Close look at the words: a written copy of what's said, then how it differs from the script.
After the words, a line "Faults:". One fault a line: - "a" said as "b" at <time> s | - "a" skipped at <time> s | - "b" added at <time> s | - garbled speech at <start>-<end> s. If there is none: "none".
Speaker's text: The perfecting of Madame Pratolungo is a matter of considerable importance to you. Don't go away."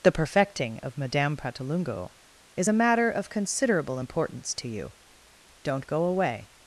The perfecting of Madame Pratolungo is a matter of considerable importance to you. Don't go away."
Faults:
none